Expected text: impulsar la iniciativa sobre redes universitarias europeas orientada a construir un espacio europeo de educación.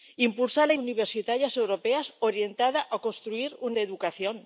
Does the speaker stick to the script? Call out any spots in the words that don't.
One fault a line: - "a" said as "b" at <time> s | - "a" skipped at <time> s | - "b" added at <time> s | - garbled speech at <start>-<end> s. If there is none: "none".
- "iniciativa sobre redes" skipped at 0.7 s
- "espacio europeo" skipped at 3.7 s